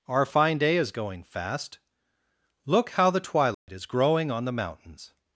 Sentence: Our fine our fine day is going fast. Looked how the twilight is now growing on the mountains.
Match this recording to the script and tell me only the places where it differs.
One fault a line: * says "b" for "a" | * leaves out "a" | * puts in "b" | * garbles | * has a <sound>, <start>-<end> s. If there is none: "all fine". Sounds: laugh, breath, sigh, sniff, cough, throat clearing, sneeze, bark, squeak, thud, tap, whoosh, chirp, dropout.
* leaves out "our fine"
* says "Look" for "Looked"
* has a dropout, 3.5-3.7 s
* leaves out "now"